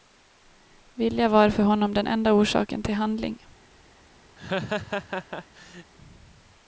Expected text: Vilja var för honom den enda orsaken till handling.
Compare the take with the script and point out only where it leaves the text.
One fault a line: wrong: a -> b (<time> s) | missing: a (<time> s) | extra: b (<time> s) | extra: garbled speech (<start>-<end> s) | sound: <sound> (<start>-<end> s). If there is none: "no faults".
sound: laugh (4.4-5.9 s)